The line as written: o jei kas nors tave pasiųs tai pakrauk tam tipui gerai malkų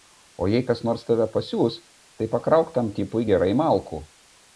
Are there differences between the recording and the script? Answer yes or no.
no